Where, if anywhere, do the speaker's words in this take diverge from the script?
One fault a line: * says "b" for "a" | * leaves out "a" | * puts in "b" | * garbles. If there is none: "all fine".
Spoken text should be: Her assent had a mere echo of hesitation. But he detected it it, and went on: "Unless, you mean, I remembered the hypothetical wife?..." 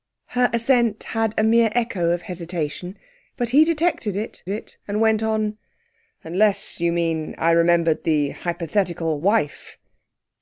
all fine